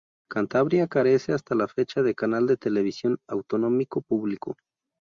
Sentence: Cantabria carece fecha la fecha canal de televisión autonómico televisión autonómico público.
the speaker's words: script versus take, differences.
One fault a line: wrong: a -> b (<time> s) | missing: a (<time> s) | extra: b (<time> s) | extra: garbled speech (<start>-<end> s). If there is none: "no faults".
wrong: fecha -> hasta (1.3 s)
extra: de (2.0 s)
missing: televisión autonómico (4.0 s)